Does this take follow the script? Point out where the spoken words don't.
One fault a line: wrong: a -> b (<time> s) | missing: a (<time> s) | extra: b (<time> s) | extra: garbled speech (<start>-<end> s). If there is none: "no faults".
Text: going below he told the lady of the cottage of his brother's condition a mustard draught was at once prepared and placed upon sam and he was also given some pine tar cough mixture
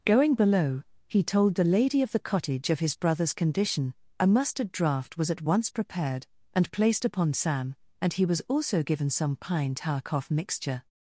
no faults